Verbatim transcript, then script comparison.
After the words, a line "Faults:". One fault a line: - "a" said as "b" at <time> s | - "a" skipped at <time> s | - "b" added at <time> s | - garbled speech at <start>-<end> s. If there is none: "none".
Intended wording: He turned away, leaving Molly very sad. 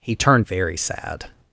He turned very sad.
Faults:
- "away leaving Molly" skipped at 0.5 s